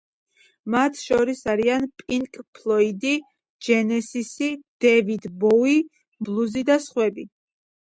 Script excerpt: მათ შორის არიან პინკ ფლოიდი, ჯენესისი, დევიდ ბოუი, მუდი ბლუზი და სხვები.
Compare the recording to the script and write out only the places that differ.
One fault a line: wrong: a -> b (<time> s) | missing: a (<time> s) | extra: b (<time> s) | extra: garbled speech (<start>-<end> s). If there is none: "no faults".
missing: მუდი (5.8 s)